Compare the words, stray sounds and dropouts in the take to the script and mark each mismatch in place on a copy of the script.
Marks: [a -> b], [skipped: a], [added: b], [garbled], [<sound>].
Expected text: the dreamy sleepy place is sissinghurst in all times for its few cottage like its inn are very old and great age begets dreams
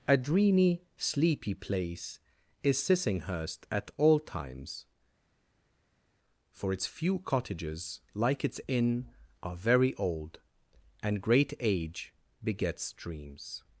[the -> a] dreamy sleepy place is sissinghurst [in -> at] all times for its few [cottage -> cottages] like its inn are very old and great age begets dreams